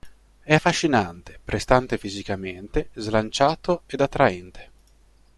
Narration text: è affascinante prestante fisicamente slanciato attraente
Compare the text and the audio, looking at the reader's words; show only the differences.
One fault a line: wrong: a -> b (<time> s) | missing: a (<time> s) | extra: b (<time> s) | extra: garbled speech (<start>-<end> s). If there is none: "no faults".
extra: ed (3.9 s)